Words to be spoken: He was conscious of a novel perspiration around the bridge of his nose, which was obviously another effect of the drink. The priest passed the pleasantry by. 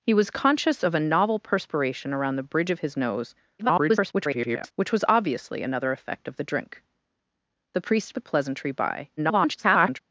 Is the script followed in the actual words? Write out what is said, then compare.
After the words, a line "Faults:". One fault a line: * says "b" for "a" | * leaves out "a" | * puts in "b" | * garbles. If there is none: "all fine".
He was conscious of a novel perspiration around the bridge of his nose, [garbled] which was obviously another effect of the drink. The priest the pleasantry by. [garbled]
Faults:
* garbles
* leaves out "passed"
* garbles